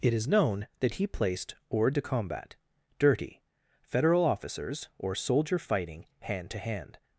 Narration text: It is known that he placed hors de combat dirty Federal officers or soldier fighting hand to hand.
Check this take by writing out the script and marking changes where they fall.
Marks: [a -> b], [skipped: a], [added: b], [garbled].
It is known that he placed hors de combat dirty Federal officers or soldier fighting hand to hand.